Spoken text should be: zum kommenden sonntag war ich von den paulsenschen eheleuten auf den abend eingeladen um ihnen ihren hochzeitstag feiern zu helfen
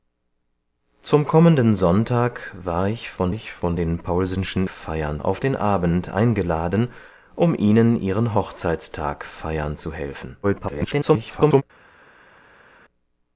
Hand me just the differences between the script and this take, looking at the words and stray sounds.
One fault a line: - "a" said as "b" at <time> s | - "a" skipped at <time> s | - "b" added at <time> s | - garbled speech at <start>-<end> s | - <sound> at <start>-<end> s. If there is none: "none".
- "ich von" added at 3.3 s
- "eheleuten" said as "feiern" at 4.7 s
- garbled speech at 10.4-11.6 s